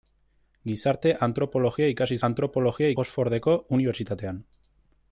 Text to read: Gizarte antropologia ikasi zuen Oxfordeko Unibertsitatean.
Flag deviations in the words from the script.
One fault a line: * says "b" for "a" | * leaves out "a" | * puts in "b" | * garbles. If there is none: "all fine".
* says "antropologia" for "zuen"